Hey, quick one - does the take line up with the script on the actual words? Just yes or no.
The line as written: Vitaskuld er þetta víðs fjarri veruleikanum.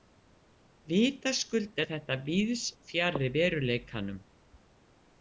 yes